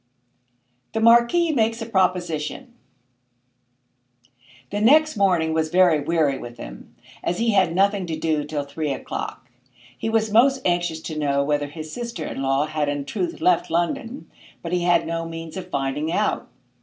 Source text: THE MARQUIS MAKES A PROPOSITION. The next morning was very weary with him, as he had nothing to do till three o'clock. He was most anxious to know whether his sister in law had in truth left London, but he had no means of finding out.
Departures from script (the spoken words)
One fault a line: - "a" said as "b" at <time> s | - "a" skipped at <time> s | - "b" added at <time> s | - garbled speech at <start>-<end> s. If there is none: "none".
none